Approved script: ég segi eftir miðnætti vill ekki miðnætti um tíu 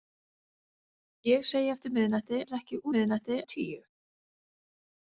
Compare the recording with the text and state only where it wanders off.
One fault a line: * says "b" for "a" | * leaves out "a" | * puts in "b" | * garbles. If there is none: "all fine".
all fine